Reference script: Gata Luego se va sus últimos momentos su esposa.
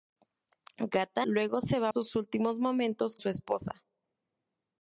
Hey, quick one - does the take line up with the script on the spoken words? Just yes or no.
yes